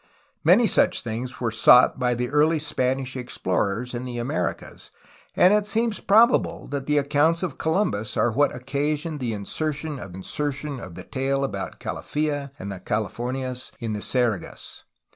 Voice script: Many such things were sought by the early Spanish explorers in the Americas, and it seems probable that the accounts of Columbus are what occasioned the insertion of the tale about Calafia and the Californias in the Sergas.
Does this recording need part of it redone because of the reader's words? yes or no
yes